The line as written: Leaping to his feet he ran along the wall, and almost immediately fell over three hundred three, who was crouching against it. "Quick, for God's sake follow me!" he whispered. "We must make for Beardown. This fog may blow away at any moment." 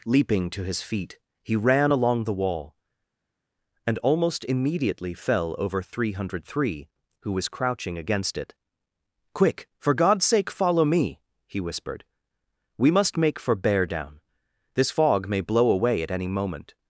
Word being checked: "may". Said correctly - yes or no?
yes